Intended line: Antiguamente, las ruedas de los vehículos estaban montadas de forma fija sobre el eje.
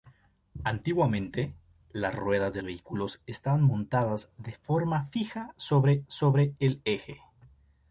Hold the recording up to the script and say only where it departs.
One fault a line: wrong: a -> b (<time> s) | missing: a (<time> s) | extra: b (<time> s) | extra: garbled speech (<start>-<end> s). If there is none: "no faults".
missing: los (2.6 s)
extra: sobre (6.1 s)